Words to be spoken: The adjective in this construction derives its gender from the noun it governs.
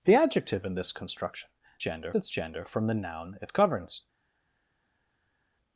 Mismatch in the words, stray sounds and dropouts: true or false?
true